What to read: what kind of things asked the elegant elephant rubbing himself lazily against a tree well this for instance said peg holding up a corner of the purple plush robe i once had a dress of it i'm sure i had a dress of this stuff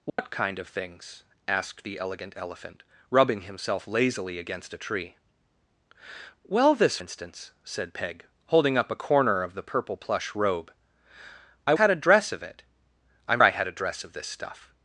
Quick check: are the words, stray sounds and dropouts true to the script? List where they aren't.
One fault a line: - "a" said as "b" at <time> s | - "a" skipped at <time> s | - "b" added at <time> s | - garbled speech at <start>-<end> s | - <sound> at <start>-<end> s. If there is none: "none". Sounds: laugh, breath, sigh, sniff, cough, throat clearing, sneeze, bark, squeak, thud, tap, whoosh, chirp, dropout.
- dropout at 0.1-0.2 s
- "for" skipped at 7.0 s
- "once" skipped at 11.7 s
- "sure" skipped at 13.4 s